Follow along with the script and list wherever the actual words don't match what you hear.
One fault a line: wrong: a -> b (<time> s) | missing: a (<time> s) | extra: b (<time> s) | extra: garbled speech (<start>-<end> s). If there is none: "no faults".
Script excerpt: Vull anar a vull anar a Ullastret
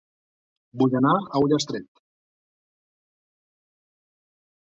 missing: vull anar a (1.4 s)